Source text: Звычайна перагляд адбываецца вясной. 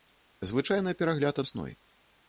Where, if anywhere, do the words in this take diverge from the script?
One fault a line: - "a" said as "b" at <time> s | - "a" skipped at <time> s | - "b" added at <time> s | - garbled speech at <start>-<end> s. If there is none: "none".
- "адбываецца" skipped at 1.4 s